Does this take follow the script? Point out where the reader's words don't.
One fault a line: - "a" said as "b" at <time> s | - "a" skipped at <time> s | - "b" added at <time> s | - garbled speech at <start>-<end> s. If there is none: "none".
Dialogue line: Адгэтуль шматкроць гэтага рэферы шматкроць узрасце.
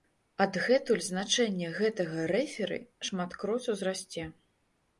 - "шматкроць" said as "значэнне" at 1.1 s